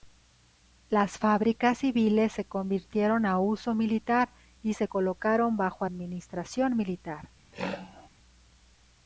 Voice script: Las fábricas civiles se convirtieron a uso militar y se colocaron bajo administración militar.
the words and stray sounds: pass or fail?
fail